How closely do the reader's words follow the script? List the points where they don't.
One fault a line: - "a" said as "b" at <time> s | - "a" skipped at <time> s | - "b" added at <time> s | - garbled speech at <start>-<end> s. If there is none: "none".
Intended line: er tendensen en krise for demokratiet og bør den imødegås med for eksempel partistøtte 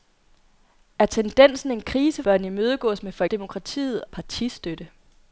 - "for demokratiet og" skipped at 2.2 s
- "eksempel" said as "demokratiet" at 3.2 s